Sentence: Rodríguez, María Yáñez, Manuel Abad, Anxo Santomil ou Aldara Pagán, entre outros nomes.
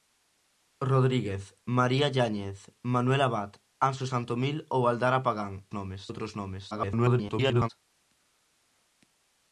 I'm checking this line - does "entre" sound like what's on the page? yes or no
no